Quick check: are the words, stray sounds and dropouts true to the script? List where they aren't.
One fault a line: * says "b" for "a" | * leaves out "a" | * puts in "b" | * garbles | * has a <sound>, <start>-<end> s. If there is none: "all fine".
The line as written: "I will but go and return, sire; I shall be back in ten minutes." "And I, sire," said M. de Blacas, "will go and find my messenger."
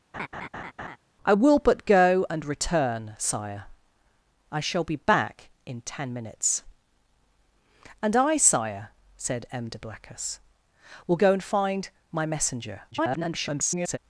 * has a laugh, 0.1-1.0 s
* garbles